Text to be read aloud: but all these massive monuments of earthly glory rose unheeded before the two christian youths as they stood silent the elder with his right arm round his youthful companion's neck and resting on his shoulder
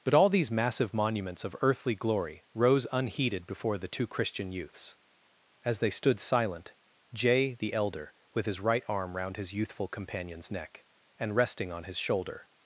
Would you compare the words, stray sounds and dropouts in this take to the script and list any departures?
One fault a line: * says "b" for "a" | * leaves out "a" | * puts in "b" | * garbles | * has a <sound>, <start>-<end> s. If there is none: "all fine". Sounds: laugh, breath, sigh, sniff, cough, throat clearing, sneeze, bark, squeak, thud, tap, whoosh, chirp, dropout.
* puts in "jay"